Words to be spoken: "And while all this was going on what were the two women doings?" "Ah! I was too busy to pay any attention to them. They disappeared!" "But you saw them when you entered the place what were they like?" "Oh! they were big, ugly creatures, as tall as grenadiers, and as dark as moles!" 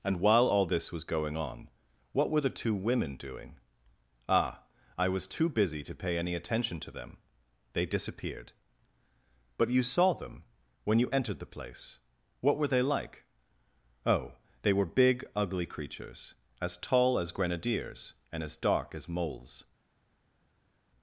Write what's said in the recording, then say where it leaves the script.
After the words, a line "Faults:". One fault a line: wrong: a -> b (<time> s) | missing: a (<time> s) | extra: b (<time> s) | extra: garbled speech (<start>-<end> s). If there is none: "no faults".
"And while all this was going on what were the two women doing?" "Ah! I was too busy to pay any attention to them. They disappeared!" "But you saw them when you entered the place what were they like?" "Oh! they were big, ugly creatures, as tall as grenadiers, and as dark as moles!"
Faults:
wrong: doings -> doing (3.2 s)